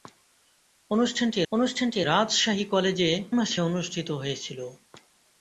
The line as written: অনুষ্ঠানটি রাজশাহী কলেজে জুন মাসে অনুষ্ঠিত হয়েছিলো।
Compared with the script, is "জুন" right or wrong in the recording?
wrong